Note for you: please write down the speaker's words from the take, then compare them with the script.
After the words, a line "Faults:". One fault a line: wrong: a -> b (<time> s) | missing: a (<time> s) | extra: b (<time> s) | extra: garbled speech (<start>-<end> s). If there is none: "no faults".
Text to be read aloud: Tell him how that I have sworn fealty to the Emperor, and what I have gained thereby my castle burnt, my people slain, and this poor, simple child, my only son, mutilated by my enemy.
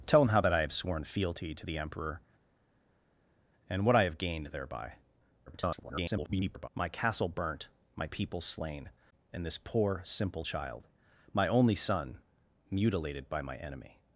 Tell him how that I have sworn fealty to the Emperor, and what I have gained thereby [garbled] my castle burnt, my people slain, and this poor, simple child, my only son, mutilated by my enemy.
Faults:
extra: garbled speech (5.5-6.7 s)